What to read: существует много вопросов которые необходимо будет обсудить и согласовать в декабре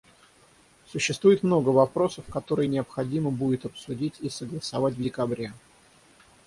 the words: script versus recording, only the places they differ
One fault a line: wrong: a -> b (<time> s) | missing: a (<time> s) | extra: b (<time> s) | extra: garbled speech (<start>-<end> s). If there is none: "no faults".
no faults